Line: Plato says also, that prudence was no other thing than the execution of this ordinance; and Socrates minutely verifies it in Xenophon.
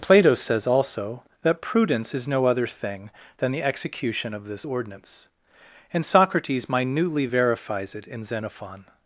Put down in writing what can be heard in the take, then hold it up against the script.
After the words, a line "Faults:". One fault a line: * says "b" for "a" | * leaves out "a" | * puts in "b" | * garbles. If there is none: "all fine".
Plato says also, that prudence is no other thing than the execution of this ordinance; and Socrates minutely verifies it in Xenophon.
Faults:
* says "is" for "was"